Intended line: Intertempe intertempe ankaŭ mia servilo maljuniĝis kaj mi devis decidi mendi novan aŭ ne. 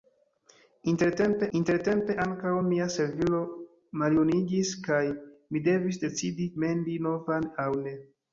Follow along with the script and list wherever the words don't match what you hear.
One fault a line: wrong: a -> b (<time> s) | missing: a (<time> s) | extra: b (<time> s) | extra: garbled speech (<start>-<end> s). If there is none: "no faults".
no faults